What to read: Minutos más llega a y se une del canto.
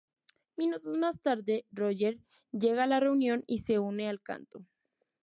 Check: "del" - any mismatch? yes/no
yes